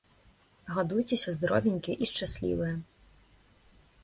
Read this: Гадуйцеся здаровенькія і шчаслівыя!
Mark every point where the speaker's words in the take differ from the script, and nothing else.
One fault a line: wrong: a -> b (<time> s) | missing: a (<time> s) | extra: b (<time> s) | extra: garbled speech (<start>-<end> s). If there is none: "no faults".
no faults